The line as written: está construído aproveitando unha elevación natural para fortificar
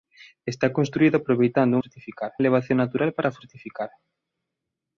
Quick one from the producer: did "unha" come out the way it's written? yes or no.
no